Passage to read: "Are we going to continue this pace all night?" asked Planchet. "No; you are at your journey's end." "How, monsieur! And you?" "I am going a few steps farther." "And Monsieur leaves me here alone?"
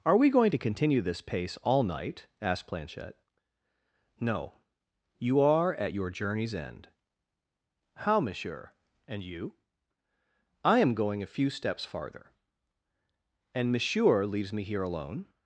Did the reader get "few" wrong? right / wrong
right